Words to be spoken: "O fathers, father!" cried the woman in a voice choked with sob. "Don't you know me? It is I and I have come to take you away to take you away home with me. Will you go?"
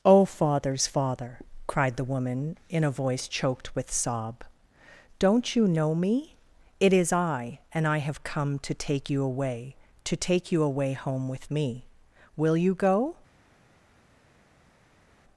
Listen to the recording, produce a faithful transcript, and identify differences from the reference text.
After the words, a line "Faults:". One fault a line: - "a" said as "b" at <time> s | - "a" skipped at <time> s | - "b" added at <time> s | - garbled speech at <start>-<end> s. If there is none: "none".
"O fathers, father!" cried the woman in a voice choked with sob. "Don't you know me? It is I and I have come to take you away to take you away home with me. Will you go?"
Faults:
none